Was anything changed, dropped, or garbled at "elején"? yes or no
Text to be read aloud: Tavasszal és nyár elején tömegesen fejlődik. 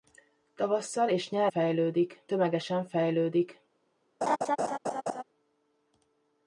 yes